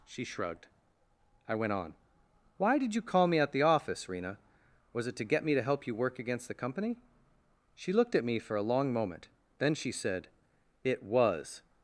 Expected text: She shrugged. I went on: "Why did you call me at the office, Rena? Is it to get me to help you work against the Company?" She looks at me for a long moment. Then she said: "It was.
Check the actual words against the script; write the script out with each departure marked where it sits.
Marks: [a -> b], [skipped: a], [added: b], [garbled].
She shrugged. I went on: "Why did you call me at the office, Rena? [Is -> Was] it to get me to help you work against the Company?" She [looks -> looked] at me for a long moment. Then she said: "It was.